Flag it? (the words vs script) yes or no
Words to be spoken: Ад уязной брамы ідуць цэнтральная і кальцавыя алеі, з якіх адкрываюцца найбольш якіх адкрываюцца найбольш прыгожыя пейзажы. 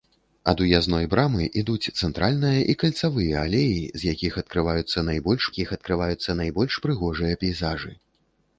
no